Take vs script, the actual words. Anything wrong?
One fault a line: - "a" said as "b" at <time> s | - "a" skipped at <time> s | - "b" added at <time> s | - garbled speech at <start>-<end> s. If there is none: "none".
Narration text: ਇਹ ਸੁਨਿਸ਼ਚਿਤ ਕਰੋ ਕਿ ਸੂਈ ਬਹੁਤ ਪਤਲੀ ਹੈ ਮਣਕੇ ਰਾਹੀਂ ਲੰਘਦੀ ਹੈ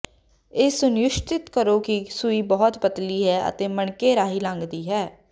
- "ਅਤੇ" added at 3.5 s